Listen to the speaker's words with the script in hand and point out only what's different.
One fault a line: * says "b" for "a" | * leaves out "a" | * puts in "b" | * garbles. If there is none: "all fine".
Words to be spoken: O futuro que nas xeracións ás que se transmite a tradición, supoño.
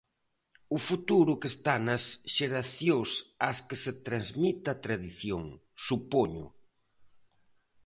* puts in "está"